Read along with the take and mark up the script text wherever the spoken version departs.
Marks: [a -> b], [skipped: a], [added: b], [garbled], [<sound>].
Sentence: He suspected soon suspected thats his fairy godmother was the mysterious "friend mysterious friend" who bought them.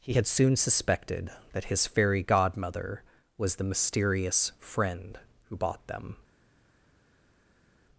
He [suspected -> had] soon suspected [thats -> that] his fairy godmother was the mysterious "friend [skipped: mysterious friend"] who bought them.